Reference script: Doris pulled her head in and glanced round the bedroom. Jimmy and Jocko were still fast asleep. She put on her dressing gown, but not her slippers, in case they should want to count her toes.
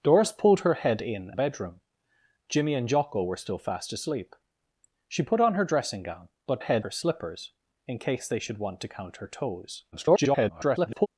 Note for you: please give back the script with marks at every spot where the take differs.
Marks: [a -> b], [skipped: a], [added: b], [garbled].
Doris pulled her head in [skipped: and glanced round] the bedroom. Jimmy and Jocko were still fast asleep. She put on her dressing gown, but [not -> head] her slippers, in case they should want to count her toes. [garbled]